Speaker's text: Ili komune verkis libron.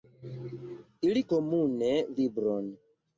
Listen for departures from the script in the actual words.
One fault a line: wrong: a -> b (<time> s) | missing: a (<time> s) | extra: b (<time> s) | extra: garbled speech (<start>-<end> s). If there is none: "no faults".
missing: verkis (1.9 s)